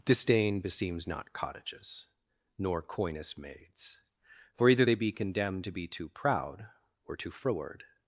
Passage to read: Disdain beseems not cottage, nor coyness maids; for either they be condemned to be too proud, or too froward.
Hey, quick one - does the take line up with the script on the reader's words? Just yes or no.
no